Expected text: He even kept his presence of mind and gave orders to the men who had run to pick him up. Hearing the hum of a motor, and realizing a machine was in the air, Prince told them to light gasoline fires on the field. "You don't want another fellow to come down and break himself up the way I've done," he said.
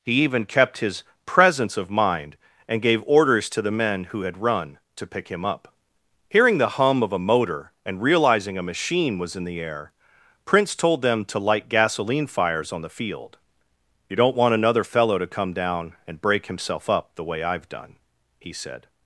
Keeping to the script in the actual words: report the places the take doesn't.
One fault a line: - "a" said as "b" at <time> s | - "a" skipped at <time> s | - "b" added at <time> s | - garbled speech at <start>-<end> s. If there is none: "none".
none